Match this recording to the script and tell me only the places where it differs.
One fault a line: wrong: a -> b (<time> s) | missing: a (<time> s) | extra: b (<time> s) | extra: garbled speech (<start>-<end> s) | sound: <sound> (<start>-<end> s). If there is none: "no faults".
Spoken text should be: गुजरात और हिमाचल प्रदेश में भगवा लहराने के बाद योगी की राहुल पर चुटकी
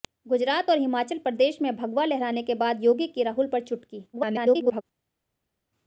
extra: garbled speech (4.1-4.8 s)